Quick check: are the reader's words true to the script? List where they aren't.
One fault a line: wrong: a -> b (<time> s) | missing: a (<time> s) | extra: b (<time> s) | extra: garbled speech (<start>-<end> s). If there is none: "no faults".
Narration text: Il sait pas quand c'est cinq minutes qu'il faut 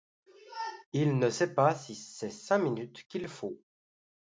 extra: ne (1.2 s)
wrong: quand -> si (1.8 s)